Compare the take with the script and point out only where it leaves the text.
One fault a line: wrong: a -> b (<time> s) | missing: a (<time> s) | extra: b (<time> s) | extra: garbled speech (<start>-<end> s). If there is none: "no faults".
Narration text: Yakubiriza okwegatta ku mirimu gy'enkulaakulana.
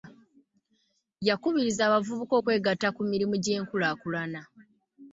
extra: abavubuka (1.9 s)